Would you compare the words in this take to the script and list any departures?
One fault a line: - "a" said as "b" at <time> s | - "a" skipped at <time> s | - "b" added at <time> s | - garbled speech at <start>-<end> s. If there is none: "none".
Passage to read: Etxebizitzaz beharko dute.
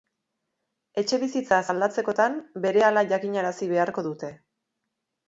- "aldatzekotan berehala jakinarazi" added at 1.7 s